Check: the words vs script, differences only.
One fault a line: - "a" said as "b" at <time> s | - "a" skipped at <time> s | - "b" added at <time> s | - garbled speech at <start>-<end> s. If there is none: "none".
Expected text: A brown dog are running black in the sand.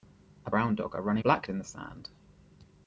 none